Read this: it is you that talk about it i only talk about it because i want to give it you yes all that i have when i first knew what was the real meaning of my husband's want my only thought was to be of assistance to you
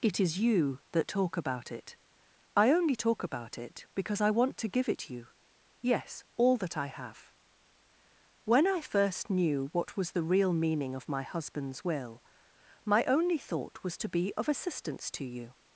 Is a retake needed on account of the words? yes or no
yes